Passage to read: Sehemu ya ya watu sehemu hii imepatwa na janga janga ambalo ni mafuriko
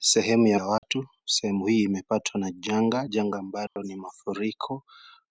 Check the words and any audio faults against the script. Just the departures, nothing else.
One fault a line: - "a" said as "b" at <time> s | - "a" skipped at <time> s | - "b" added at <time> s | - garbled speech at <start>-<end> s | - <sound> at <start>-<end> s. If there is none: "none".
- dropout at 0.8-0.8 s
- dropout at 3.7-3.8 s